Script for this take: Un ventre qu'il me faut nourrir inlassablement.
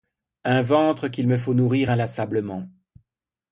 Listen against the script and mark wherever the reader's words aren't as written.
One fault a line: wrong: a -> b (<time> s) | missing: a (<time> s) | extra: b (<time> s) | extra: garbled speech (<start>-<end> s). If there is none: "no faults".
no faults